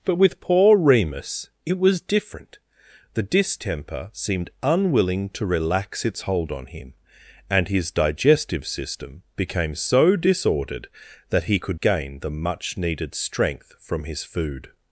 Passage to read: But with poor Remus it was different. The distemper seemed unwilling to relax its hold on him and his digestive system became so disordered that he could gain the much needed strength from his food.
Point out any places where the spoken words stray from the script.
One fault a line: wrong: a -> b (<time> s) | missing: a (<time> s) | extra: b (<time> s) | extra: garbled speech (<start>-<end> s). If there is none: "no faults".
no faults